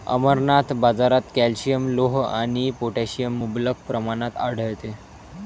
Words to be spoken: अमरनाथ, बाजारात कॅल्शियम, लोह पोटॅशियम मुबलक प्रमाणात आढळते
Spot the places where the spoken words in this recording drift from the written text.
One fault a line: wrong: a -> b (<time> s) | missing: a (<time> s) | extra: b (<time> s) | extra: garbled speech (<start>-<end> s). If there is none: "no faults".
extra: आणि (2.2 s)